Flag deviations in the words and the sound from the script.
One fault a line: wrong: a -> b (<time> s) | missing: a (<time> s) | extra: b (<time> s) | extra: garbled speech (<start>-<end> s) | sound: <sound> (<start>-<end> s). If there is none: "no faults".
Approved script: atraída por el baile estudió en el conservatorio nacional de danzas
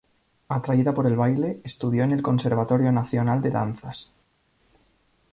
no faults